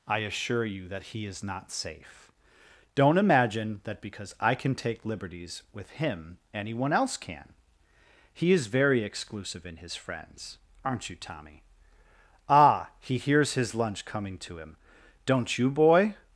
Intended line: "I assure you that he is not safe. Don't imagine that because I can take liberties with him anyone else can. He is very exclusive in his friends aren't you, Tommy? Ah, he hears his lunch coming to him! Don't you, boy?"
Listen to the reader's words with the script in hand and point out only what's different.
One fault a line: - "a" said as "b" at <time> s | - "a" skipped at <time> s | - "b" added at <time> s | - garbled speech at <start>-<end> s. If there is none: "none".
none